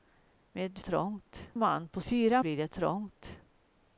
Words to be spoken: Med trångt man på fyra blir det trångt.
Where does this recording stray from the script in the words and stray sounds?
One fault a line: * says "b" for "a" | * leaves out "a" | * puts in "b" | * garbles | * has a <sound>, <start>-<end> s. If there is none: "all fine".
all fine